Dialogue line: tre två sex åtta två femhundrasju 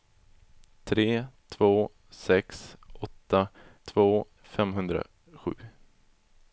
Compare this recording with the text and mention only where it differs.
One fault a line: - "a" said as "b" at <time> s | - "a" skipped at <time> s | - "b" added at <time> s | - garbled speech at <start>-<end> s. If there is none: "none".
none